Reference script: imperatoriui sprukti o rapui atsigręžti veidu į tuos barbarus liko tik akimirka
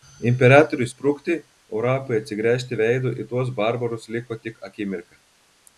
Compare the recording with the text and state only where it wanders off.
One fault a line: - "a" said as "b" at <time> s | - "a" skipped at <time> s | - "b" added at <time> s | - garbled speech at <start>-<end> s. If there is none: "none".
none